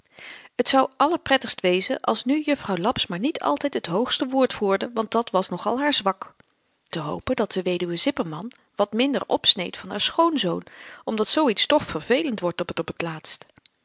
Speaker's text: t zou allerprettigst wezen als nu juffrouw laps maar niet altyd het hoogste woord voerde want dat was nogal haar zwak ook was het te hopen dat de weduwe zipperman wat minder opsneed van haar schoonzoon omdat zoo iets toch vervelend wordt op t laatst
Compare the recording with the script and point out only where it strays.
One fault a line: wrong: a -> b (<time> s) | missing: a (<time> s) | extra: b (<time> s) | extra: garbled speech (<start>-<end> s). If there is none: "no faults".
missing: ook was het (6.3 s)
extra: op (12.8 s)